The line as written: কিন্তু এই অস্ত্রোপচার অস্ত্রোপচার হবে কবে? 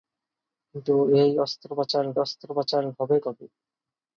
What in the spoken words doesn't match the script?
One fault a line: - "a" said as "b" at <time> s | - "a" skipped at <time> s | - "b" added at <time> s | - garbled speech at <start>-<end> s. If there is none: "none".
none